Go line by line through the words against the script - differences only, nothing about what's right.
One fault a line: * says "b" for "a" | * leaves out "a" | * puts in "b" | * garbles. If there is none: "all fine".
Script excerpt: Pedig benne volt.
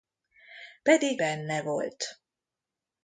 all fine